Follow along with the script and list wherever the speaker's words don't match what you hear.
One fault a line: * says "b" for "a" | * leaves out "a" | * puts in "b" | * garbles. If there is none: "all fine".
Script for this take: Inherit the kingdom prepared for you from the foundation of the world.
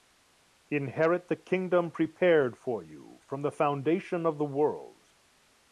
all fine